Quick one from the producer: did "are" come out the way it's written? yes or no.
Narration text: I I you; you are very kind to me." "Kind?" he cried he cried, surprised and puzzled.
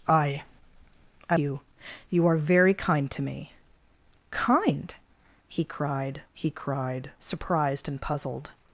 yes